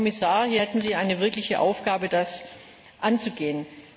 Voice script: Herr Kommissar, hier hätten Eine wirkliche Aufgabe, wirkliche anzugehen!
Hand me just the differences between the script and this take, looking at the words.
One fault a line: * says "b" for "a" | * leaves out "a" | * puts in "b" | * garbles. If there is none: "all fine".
* puts in "Sie"
* says "das" for "wirkliche"